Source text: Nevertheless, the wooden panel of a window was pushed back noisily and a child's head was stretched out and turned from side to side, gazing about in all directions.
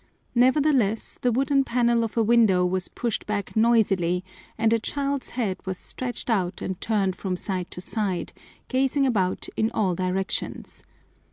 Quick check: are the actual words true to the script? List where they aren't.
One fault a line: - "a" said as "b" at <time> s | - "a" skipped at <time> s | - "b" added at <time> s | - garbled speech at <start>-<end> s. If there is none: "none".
none